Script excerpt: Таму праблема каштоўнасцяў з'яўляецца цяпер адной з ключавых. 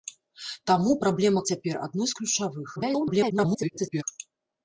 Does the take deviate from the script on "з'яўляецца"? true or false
true